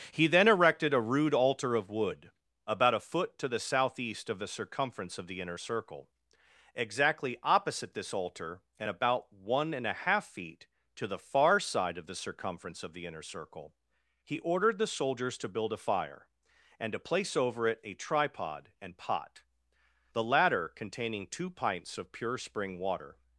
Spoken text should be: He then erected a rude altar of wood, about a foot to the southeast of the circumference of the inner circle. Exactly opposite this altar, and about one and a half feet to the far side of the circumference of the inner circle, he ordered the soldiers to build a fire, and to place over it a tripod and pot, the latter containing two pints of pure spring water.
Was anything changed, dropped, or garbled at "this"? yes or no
no